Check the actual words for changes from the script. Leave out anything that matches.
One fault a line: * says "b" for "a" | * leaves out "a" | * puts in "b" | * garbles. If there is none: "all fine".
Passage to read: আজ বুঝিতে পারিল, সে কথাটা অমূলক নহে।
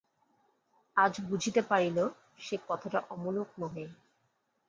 all fine